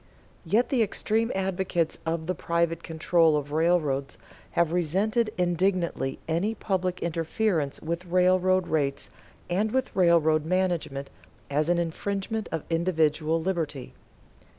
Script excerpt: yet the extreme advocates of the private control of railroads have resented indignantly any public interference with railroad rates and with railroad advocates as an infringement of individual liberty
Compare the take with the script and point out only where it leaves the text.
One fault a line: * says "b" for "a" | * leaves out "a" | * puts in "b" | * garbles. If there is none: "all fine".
* says "management" for "advocates"